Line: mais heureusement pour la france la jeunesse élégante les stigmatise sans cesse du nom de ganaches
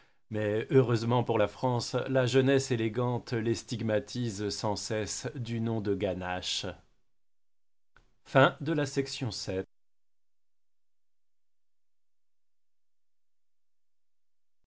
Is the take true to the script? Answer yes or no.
yes